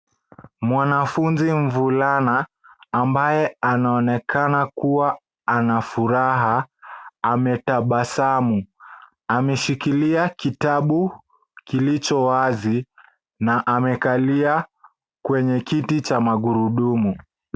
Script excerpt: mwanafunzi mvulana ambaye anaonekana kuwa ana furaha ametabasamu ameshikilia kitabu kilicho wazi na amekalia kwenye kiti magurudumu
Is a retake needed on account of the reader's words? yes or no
yes